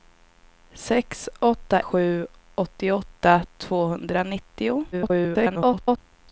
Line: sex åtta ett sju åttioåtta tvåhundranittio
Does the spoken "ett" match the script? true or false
false